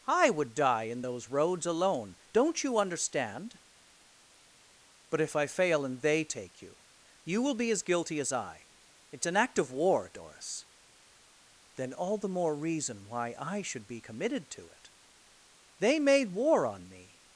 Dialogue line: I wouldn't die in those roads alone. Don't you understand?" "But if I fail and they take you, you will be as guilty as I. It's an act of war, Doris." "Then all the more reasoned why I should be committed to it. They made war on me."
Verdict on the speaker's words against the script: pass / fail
fail